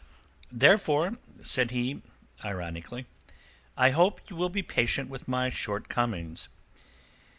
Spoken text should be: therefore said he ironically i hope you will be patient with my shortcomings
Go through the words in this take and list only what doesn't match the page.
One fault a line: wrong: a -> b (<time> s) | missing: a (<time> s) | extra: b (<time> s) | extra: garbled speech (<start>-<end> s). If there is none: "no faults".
no faults